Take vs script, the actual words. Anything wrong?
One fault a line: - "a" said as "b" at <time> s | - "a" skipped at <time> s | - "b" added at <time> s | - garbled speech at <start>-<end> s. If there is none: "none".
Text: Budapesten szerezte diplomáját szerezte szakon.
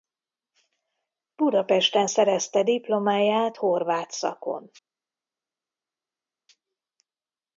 - "szerezte" said as "horvát" at 3.5 s